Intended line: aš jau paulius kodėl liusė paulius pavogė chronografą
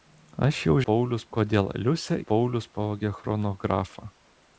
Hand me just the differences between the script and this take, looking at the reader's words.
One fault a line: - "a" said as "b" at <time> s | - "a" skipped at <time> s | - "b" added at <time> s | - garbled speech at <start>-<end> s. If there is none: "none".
none